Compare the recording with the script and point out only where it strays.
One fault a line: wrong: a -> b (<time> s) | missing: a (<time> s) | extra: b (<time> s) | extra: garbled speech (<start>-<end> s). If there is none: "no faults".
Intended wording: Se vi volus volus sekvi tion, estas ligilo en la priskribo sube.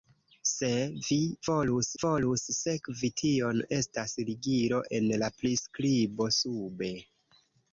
no faults